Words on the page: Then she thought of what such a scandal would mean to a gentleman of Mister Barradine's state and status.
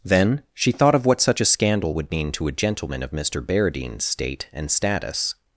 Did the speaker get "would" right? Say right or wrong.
right